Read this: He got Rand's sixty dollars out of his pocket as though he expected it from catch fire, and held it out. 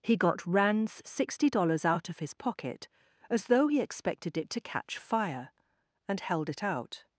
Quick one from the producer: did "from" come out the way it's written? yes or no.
no